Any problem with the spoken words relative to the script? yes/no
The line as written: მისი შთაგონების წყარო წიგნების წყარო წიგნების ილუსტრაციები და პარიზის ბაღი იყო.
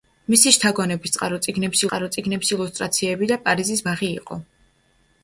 no